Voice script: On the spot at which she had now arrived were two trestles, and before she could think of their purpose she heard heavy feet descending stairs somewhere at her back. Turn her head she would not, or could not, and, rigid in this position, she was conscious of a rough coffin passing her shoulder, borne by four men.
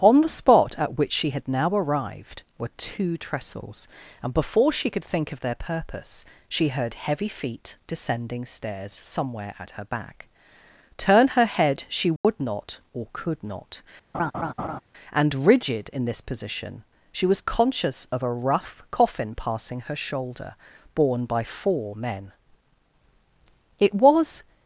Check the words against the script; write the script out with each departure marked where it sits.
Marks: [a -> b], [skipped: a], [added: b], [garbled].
On the spot at which she had now arrived were two trestles, and before she could think of their purpose she heard heavy feet descending stairs somewhere at her back. Turn her head she would not, or could not, and, rigid in this position, she was conscious of a rough coffin passing her shoulder, borne by four men. [added: It was]